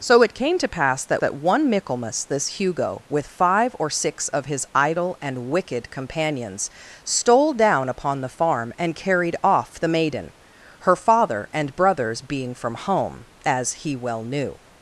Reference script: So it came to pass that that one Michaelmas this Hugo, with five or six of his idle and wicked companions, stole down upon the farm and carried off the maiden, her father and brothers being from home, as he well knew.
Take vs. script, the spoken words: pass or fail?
pass